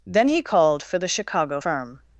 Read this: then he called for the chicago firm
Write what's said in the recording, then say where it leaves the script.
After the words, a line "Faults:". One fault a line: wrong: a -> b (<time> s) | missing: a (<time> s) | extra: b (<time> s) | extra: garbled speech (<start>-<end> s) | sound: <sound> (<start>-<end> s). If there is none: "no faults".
then he called for the chicago firm
Faults:
no faults